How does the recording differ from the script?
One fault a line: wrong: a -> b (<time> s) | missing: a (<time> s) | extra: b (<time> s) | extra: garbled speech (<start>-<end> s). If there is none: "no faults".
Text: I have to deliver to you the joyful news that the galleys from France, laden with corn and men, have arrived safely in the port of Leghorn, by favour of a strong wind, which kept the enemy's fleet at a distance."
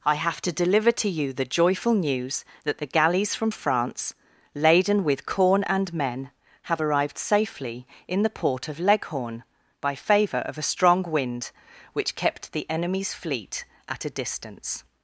no faults